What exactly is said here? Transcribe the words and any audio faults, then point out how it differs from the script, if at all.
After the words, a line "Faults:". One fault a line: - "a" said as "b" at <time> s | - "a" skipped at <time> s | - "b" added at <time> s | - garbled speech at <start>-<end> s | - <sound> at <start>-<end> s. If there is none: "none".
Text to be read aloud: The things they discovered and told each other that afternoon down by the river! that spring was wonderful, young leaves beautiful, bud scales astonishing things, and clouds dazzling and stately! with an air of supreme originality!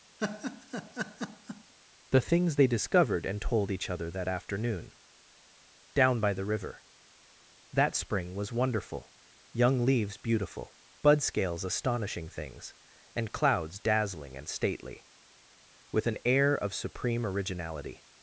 The things they discovered and told each other that afternoon down by the river! that spring was wonderful, young leaves beautiful, bud scales astonishing things, and clouds dazzling and stately! with an air of supreme originality!
Faults:
- laugh at 0.2-1.7 s